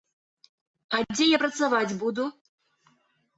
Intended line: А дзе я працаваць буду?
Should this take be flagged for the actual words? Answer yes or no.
no